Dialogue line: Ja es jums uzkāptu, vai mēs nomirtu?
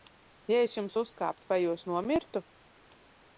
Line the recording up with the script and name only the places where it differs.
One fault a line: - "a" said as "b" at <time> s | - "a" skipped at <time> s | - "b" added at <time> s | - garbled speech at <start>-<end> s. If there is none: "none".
- "mēs" said as "jūs" at 1.6 s